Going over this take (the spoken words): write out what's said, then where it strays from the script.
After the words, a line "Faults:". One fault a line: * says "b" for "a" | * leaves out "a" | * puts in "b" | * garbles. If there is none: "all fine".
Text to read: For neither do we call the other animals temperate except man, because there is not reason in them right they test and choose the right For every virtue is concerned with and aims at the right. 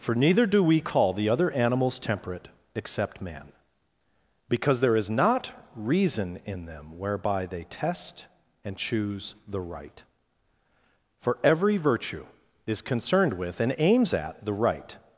For neither do we call the other animals temperate except man, because there is not reason in them whereby they test and choose the right For every virtue is concerned with and aims at the right.
Faults:
* says "whereby" for "right"